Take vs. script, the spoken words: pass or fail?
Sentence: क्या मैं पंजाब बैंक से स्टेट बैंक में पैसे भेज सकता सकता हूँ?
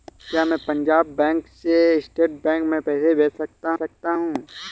pass